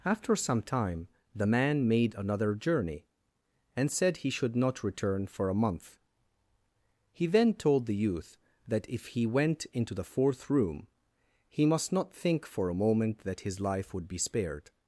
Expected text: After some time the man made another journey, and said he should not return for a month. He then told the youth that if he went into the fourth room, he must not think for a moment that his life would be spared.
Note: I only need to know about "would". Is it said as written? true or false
true